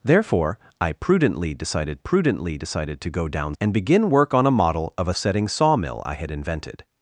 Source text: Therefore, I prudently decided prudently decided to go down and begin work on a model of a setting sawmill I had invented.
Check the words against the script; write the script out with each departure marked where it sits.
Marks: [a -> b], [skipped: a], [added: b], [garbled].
Therefore, I prudently decided prudently decided to go down and begin work on a model of a setting sawmill I had invented.